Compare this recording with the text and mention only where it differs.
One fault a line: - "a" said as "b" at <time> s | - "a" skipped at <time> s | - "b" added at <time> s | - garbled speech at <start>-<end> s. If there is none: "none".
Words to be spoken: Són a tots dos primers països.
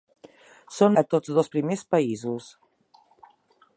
none